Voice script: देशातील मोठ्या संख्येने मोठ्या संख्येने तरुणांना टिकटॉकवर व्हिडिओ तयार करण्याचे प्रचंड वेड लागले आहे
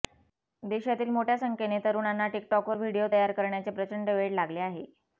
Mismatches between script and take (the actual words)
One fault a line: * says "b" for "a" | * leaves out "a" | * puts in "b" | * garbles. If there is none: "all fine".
* leaves out "मोठ्या संख्येने"